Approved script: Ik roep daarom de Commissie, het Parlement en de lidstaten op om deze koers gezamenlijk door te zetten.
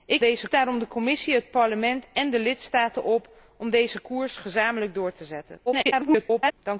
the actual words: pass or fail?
fail